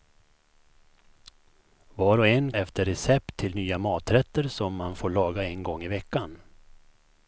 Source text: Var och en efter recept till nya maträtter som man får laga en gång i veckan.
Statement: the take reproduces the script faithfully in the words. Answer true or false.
true